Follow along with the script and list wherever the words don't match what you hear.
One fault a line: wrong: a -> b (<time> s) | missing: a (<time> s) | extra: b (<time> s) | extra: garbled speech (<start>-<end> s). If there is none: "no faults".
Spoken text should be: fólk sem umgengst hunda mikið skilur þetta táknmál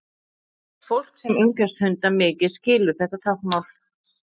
no faults